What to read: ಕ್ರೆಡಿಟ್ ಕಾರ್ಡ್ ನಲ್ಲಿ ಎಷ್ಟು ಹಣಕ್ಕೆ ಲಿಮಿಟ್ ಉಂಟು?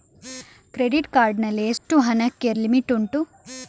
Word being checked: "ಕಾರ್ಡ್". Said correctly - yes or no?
yes